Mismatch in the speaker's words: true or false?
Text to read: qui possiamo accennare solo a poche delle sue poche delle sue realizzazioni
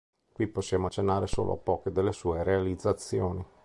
true